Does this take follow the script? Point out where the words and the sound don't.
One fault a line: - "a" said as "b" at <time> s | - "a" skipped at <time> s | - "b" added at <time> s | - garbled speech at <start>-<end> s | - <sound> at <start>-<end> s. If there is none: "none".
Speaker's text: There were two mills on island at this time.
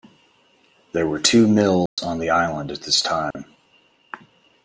- dropout at 1.9-2.0 s
- "the" added at 2.2 s
- dropout at 3.3-3.4 s